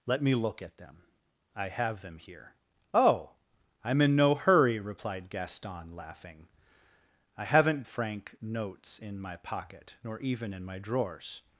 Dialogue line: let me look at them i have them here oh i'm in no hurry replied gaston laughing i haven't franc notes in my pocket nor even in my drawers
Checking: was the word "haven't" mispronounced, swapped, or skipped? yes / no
no